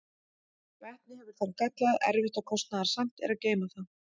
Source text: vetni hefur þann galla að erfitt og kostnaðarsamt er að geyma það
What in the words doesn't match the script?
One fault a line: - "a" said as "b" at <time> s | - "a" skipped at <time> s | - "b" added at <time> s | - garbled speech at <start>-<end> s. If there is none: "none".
none